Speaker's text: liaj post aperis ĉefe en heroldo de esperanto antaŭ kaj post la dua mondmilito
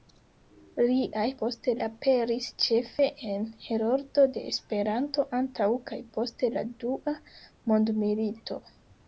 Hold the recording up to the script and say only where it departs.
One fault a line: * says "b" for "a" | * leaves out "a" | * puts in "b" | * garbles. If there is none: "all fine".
all fine